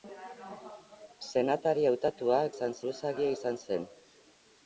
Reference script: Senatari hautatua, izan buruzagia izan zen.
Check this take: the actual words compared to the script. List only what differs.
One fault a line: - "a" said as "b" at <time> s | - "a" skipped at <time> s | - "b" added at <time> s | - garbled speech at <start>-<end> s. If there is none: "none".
none